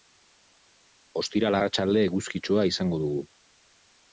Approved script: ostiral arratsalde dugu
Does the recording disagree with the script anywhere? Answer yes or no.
yes